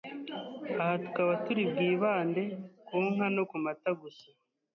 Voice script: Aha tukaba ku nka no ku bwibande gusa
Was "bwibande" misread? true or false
true